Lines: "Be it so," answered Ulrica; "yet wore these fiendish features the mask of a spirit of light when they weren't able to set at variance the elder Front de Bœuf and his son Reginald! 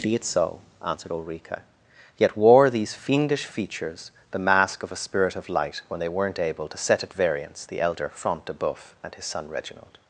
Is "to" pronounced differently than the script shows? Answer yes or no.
no